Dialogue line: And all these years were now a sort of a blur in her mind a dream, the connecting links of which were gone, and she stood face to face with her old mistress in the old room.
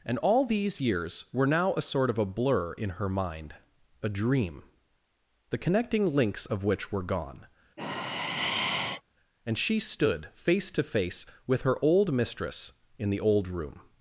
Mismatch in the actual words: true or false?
false